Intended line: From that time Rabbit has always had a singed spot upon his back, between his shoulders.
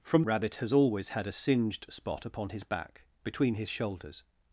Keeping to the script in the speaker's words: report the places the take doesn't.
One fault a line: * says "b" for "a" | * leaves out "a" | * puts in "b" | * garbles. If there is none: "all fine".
* leaves out "that time"